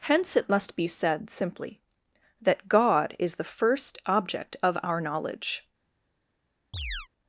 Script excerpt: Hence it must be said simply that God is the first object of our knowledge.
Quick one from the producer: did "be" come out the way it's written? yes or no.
yes